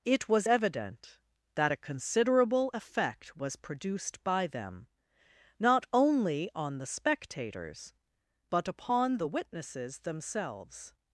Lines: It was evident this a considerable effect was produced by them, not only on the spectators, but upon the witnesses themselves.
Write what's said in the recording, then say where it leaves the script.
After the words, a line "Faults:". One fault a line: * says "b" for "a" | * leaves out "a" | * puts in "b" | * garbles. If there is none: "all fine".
It was evident that a considerable effect was produced by them, not only on the spectators, but upon the witnesses themselves.
Faults:
* says "that" for "this"